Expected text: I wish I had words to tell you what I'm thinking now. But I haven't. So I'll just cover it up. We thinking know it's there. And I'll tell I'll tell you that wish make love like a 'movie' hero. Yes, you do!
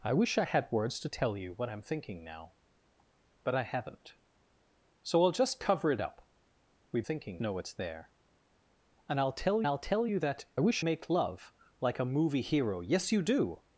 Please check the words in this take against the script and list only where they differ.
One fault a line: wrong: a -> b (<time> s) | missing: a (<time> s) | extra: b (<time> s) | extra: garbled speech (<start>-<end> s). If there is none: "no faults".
no faults